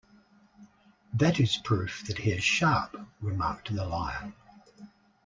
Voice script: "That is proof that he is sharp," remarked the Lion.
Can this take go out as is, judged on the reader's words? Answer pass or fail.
pass